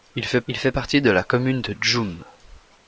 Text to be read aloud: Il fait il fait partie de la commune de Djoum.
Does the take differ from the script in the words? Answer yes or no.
no